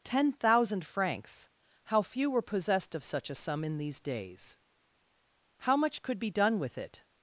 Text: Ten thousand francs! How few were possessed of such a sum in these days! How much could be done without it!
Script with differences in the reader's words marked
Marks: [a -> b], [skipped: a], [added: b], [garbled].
Ten thousand francs! How few were possessed of such a sum in these days! How much could be done [without -> with] it!